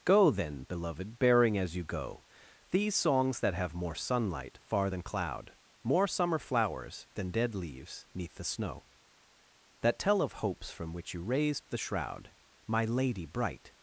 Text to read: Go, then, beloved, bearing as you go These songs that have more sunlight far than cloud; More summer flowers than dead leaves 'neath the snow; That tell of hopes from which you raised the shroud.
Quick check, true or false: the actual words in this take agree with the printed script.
false